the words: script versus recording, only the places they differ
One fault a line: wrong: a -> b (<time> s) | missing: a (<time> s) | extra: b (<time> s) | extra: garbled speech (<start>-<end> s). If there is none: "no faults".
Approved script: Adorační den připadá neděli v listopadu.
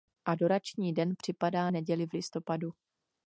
no faults